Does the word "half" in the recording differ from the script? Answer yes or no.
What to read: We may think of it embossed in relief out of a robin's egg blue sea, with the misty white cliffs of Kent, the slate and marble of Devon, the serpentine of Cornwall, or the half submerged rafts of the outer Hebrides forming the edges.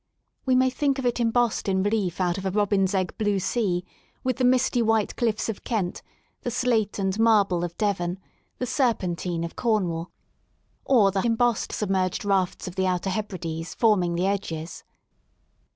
yes